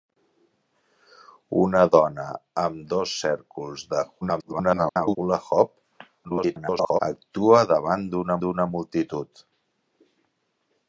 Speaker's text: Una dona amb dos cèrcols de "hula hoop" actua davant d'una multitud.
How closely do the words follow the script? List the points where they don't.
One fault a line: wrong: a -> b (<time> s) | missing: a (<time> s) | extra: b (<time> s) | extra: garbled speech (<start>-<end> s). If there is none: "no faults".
extra: garbled speech (4.2-5.2 s)
extra: garbled speech (6.2-7.0 s)
extra: d'una (8.4 s)